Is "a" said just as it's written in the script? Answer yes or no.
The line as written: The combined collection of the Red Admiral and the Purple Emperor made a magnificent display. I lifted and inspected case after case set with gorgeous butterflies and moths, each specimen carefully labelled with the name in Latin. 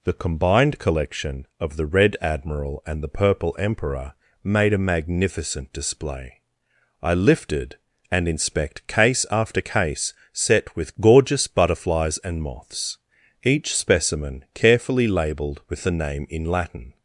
yes